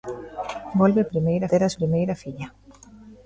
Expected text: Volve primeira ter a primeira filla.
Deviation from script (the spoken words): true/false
false